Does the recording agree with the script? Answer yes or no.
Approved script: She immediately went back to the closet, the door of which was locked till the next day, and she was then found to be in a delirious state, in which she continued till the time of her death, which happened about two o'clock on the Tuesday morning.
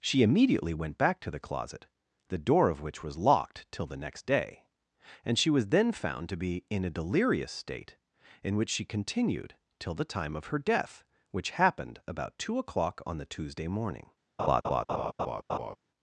yes